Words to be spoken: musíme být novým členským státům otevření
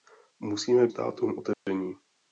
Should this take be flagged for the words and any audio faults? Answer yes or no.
yes